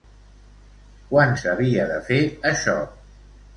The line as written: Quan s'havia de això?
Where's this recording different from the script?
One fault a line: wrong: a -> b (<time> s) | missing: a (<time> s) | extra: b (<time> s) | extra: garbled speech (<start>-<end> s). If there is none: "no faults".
extra: fer (2.1 s)